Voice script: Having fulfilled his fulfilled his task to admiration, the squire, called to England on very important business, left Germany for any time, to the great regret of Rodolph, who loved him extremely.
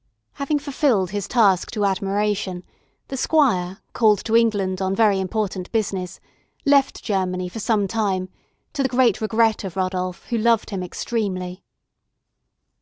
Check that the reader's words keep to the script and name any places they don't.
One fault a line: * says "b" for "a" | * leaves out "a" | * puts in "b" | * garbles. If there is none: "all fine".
* leaves out "fulfilled his"
* says "some" for "any"